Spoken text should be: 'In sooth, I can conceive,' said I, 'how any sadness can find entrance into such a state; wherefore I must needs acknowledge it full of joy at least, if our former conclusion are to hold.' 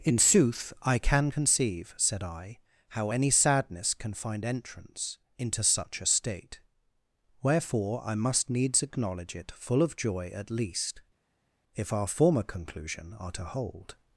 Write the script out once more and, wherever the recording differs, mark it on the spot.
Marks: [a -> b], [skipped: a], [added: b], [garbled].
'In sooth, I can conceive,' said I, 'how any sadness can find entrance into such a state; wherefore I must needs acknowledge it full of joy at least, if our former conclusion are to hold.'